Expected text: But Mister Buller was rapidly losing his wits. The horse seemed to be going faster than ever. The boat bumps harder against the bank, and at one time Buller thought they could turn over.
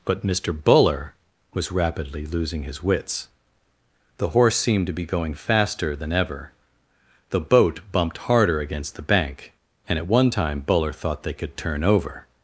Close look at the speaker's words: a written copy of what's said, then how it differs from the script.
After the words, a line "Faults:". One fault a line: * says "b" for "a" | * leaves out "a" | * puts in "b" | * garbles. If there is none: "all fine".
But Mister Buller was rapidly losing his wits. The horse seemed to be going faster than ever. The boat bumped harder against the bank, and at one time Buller thought they could turn over.
Faults:
* says "bumped" for "bumps"